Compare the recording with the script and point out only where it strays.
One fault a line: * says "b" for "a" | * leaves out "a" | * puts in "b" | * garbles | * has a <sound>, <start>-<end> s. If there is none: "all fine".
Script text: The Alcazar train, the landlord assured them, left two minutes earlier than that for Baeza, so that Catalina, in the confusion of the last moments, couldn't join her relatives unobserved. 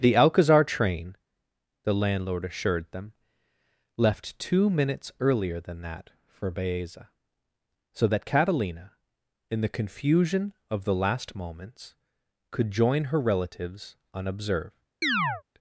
* says "could" for "couldn't"
* has a chirp, 15.0-15.4 s